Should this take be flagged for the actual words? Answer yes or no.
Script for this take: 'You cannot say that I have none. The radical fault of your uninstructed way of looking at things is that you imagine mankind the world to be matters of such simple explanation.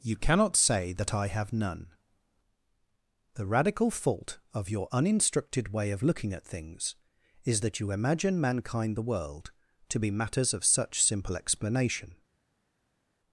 no